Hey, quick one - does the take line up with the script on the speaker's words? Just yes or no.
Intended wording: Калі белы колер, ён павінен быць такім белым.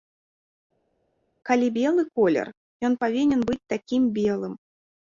yes